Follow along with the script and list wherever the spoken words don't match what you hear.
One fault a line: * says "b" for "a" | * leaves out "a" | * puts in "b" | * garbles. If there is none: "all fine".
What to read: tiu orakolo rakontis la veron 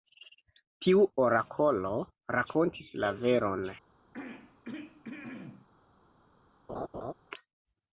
all fine